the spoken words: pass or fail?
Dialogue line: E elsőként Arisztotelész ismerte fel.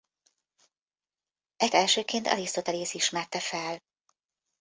pass